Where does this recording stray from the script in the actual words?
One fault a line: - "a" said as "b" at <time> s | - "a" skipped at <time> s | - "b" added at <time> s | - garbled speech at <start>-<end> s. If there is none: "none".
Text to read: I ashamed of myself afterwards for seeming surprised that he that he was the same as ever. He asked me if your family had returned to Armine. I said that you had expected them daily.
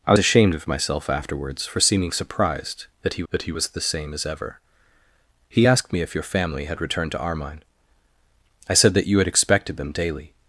none